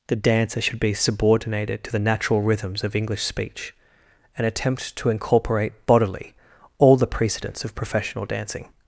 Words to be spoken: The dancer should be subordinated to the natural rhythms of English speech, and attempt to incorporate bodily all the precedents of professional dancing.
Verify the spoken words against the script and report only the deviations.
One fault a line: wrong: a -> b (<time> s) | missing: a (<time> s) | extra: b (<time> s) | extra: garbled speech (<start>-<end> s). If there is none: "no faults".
no faults